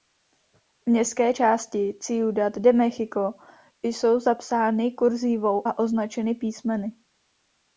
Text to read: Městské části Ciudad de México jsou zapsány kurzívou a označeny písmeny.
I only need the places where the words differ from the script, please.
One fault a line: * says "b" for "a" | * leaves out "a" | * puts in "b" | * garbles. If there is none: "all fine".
all fine